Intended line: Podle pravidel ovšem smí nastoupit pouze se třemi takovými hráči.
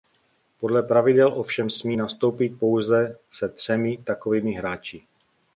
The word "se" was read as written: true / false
true